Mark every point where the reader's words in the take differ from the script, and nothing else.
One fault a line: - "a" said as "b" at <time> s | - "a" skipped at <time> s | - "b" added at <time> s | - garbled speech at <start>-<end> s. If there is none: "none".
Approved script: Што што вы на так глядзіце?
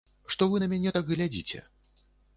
- "што" skipped at 0.5 s
- "мяне" added at 0.7 s